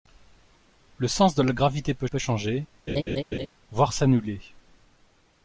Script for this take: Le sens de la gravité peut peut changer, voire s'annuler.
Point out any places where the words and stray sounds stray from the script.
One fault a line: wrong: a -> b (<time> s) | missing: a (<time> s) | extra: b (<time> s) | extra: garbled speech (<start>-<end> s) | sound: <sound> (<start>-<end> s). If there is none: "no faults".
sound: laugh (2.9-3.5 s)